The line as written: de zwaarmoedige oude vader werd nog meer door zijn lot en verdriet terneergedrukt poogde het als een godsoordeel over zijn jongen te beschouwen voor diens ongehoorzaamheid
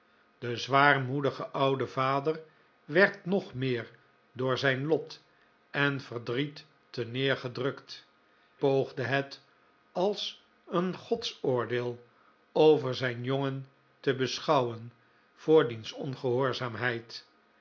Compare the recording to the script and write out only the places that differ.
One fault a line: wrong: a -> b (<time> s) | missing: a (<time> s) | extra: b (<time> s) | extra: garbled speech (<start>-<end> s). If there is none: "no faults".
no faults